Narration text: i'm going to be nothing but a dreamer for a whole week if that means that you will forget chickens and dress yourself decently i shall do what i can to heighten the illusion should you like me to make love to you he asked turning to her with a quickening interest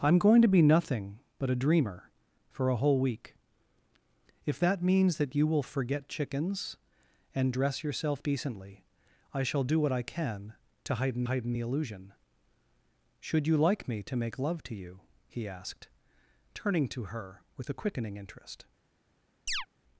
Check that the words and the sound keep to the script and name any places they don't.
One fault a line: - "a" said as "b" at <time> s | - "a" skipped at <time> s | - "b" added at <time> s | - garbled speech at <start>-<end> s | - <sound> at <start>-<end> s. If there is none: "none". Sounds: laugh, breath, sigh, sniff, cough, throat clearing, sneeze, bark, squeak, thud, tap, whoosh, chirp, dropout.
- "heighten" added at 11.2 s
- chirp at 19.5-19.7 s